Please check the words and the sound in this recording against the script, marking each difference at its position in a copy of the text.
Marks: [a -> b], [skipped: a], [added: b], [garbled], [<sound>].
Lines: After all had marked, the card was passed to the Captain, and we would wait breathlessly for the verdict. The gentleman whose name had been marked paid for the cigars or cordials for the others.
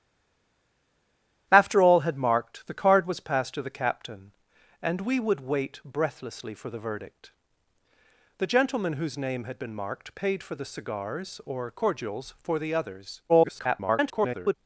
After all had marked, the card was passed to the Captain, and we would wait breathlessly for the verdict. The gentleman whose name had been marked paid for the cigars or cordials for the others. [garbled]